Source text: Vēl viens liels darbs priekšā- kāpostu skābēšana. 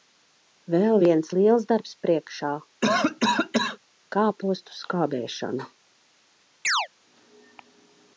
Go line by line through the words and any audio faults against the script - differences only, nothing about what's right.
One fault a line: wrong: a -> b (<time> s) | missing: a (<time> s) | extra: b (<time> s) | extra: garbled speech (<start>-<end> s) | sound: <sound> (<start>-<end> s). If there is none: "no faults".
sound: cough (2.8-3.8 s)
sound: chirp (6.6-6.9 s)